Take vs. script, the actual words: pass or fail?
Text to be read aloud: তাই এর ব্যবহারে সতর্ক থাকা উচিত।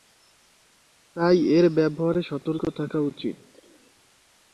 pass